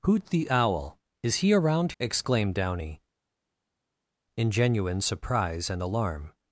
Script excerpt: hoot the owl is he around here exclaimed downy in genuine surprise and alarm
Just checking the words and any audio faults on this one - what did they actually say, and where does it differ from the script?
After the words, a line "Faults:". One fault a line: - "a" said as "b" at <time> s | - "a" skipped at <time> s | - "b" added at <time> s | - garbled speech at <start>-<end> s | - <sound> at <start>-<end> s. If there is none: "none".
hoot the owl is he around exclaimed downy in genuine surprise and alarm
Faults:
- "here" skipped at 1.9 s